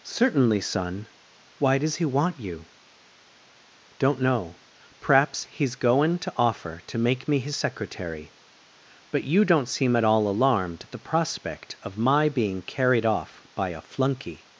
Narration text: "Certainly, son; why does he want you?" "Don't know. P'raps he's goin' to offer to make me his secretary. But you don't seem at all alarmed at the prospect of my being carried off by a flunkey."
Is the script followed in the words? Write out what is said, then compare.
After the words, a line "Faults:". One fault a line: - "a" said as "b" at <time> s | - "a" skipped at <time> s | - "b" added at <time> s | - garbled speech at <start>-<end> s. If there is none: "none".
"Certainly, son; why does he want you?" "Don't know. P'raps he's goin' to offer to make me his secretary. But you don't seem at all alarmed at the prospect of my being carried off by a flunkey."
Faults:
none